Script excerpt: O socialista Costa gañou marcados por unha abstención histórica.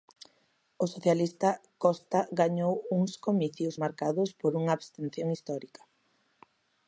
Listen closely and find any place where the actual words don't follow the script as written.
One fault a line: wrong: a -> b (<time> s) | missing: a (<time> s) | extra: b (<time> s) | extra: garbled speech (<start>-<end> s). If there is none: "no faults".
extra: uns comicios (3.0 s)